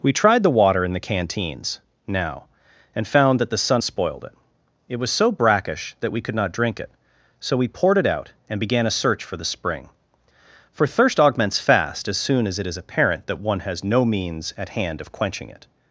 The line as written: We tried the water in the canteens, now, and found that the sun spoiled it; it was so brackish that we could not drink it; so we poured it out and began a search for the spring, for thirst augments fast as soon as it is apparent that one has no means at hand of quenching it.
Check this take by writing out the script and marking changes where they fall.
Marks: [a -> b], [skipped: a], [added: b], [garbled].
We tried the water in the canteens, now, and found that the sun spoiled it; it was so brackish that we could not drink it; so we poured it out and began a search for the spring, for thirst augments fast as soon as it is apparent that one has no means at hand of quenching it.